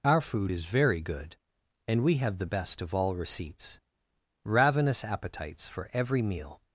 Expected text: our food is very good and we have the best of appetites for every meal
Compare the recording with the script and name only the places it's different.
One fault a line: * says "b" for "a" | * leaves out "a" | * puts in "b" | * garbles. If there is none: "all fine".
* puts in "all receipts ravenous"